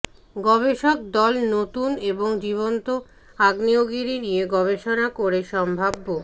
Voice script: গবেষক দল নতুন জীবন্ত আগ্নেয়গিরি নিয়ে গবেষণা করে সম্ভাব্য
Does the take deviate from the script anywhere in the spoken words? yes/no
yes